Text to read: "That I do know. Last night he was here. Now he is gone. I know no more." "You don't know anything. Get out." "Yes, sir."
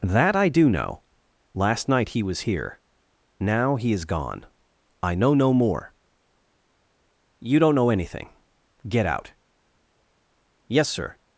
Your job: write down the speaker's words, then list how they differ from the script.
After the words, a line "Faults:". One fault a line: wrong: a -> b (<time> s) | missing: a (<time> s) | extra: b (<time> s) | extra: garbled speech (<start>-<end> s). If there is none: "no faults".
"That I do know. Last night he was here. Now he is gone. I know no more." "You don't know anything. Get out." "Yes, sir."
Faults:
no faults